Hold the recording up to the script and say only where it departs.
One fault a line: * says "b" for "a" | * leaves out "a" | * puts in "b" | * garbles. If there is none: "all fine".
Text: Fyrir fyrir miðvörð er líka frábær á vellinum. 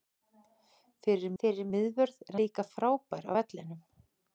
all fine